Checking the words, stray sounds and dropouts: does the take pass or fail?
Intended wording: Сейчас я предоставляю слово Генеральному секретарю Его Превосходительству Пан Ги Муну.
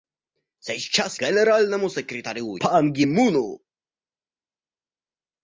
fail